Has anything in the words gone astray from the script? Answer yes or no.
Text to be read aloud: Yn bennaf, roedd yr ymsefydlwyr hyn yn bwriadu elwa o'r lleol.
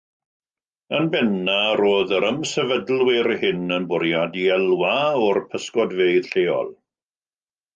yes